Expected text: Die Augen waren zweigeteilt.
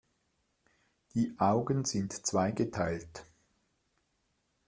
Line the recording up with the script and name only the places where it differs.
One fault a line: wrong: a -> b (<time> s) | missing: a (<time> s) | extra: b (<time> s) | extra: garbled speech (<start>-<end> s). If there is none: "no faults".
wrong: waren -> sind (1.9 s)